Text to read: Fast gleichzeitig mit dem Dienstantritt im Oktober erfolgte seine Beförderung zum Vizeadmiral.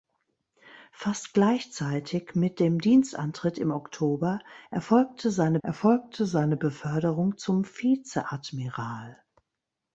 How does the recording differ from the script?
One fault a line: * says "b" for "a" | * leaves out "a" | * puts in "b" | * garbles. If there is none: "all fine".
* puts in "erfolgte seine"